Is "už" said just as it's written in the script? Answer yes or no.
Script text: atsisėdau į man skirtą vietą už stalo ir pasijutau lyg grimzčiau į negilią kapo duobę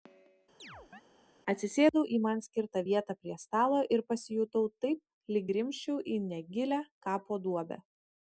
no